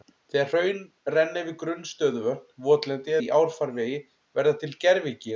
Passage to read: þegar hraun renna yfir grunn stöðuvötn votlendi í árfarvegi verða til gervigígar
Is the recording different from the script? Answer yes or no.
no